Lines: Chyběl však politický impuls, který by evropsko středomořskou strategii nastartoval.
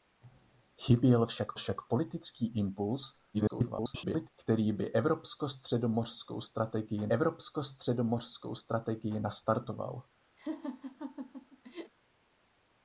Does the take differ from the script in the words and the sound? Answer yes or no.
yes